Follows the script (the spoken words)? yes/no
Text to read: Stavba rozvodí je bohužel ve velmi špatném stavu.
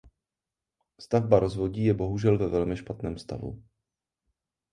yes